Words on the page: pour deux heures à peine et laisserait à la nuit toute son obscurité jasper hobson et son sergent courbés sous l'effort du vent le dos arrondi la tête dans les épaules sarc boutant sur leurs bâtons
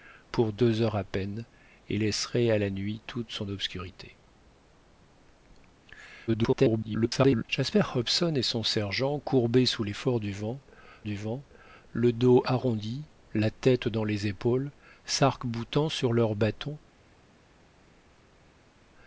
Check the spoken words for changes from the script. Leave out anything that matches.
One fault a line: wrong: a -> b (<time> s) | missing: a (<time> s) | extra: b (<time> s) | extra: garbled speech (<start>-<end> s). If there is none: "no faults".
extra: garbled speech (6.3-7.5 s)
extra: du vent (11.0 s)